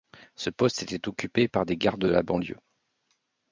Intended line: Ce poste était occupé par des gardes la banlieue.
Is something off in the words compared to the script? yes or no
no